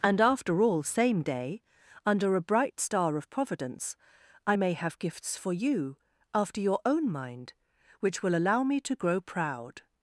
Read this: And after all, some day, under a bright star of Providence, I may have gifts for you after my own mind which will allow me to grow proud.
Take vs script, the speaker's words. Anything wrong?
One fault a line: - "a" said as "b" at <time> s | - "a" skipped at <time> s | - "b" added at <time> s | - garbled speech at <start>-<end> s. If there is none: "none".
- "some" said as "same" at 0.8 s
- "my" said as "your" at 6.6 s